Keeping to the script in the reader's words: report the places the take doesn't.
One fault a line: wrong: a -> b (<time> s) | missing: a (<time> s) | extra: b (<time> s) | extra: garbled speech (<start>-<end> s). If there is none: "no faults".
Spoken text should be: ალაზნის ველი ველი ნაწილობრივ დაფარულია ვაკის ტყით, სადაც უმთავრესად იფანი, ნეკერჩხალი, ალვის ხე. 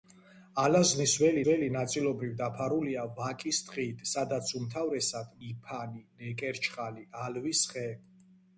no faults